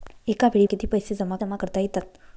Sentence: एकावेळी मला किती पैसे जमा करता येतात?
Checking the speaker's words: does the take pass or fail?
fail